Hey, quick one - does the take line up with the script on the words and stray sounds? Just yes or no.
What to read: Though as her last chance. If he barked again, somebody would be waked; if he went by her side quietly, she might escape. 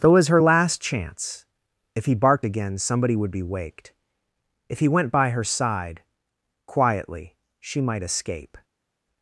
yes